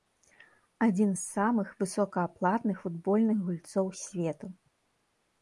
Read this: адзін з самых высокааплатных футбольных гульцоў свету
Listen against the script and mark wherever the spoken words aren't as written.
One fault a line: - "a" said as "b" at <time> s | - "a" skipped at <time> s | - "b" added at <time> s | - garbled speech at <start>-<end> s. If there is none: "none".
none